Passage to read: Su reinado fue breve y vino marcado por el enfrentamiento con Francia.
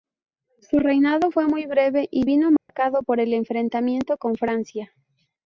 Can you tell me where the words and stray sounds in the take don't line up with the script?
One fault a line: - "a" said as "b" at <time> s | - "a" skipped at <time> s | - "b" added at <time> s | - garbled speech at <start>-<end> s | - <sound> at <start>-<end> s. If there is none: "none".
- "muy" added at 1.5 s
- dropout at 2.6-2.7 s